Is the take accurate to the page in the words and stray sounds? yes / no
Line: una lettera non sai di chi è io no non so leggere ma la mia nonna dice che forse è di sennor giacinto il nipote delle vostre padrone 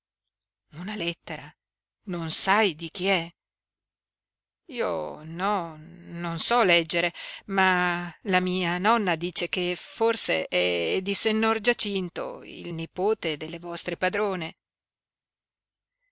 yes